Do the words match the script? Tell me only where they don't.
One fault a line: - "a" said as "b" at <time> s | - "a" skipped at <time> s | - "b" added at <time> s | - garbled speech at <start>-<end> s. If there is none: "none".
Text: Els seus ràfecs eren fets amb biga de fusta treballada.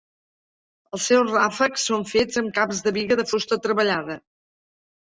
- "eren" said as "són" at 1.9 s
- "caps de" added at 2.6 s